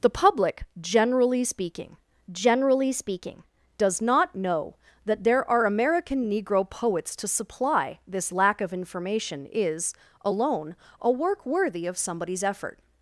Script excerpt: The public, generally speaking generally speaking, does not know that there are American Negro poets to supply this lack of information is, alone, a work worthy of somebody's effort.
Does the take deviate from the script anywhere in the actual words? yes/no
no